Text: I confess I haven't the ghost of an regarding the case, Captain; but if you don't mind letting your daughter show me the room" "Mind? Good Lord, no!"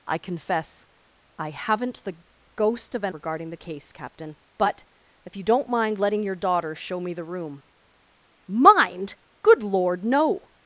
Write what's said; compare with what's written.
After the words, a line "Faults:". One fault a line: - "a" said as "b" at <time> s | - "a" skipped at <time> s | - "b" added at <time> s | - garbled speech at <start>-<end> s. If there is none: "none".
I confess I haven't the ghost of an regarding the case, Captain; but if you don't mind letting your daughter show me the room" "Mind? Good Lord, no!"
Faults:
none